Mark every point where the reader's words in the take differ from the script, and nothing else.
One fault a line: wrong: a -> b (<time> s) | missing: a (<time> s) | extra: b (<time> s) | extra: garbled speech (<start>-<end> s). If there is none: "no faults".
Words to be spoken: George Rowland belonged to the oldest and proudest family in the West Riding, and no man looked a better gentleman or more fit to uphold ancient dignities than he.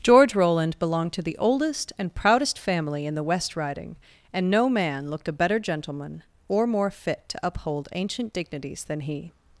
no faults